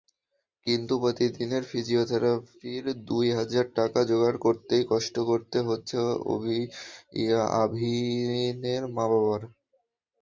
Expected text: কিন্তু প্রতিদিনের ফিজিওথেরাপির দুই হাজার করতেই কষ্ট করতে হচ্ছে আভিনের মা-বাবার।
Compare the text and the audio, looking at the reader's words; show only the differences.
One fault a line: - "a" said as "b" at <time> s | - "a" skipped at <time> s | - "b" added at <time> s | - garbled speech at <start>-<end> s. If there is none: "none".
- "টাকা জোগাড়" added at 3.8 s